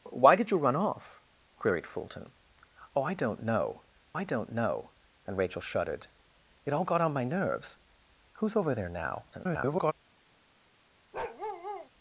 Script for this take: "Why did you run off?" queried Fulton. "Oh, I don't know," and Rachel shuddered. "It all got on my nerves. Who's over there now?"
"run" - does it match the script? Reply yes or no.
yes